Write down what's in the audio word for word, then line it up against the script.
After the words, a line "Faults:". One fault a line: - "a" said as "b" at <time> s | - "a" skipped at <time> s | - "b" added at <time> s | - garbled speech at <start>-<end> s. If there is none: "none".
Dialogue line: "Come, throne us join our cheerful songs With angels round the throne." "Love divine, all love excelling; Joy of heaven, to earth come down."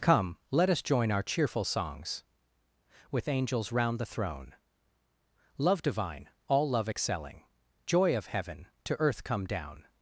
"Come, let us join our cheerful songs With angels round the throne." "Love divine, all love excelling; Joy of heaven, to earth come down."
Faults:
- "throne" said as "let" at 0.5 s